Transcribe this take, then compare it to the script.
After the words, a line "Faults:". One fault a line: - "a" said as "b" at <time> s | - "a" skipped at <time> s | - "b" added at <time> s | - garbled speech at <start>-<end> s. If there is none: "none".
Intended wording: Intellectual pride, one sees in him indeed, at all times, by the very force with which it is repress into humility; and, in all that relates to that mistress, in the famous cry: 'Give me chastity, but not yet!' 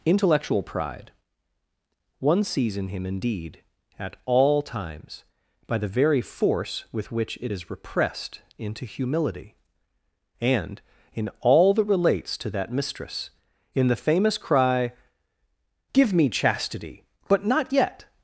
Intellectual pride, one sees in him indeed, at all times, by the very force with which it is repressed into humility; and, in all that relates to that mistress, in the famous cry: 'Give me chastity, but not yet!'
Faults:
- "repress" said as "repressed" at 7.7 s